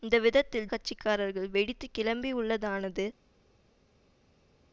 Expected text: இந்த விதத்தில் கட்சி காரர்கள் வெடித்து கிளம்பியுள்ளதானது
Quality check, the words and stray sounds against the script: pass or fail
pass